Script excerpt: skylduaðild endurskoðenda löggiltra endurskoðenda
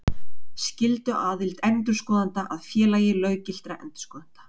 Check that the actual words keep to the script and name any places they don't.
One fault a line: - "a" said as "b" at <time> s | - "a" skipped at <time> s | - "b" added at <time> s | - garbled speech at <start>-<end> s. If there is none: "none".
- "að félagi" added at 2.6 s